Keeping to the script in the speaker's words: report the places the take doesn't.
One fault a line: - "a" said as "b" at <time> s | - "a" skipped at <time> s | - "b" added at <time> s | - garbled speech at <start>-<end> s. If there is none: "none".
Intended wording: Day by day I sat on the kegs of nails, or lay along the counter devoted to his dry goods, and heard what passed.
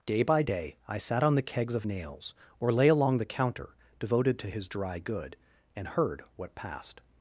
- "goods" said as "good" at 5.0 s